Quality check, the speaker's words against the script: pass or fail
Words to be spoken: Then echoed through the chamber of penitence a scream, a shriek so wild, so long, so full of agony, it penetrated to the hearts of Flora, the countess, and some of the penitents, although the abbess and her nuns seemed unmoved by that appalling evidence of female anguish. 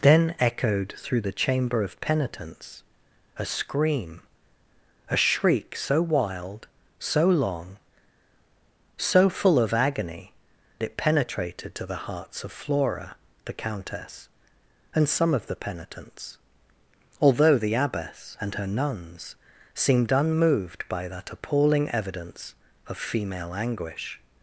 pass